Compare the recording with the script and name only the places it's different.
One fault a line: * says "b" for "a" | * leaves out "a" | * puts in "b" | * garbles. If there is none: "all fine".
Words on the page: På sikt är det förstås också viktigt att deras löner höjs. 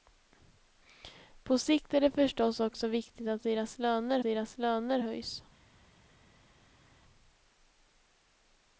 * puts in "deras löner"